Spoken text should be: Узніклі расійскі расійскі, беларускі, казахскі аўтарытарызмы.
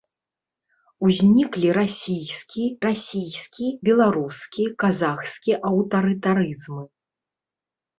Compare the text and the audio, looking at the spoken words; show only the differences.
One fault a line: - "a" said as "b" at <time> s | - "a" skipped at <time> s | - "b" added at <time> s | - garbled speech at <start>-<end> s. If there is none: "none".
none